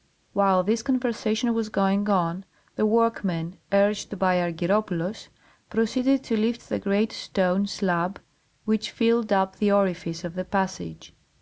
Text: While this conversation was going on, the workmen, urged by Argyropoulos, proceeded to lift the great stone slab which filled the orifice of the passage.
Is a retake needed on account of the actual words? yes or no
yes